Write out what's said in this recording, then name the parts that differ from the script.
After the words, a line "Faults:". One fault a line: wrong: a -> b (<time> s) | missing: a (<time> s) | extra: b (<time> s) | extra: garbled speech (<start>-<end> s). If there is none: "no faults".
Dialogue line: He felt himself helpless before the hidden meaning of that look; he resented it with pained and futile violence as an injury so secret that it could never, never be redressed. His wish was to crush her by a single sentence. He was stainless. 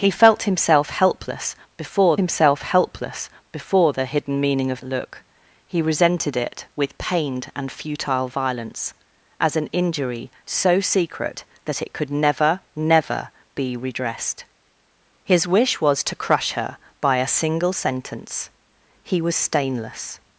He felt himself helpless before himself helpless before the hidden meaning of look; he resented it with pained and futile violence as an injury so secret that it could never, never be redressed. His wish was to crush her by a single sentence. He was stainless.
Faults:
extra: himself helpless before (2.2 s)
missing: that (4.8 s)